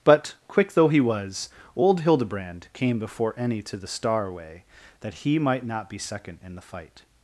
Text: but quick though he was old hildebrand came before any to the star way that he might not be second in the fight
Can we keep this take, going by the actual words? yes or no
yes